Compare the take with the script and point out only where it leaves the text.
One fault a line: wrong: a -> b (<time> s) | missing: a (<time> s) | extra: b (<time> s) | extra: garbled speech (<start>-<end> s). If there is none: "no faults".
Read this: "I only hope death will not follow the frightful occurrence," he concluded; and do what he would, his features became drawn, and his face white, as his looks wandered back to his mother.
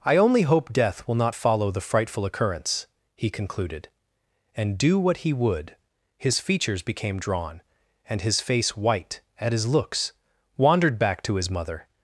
wrong: as -> at (9.4 s)